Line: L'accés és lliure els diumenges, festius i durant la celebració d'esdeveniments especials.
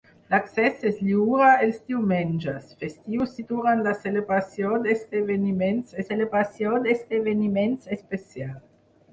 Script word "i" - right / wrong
right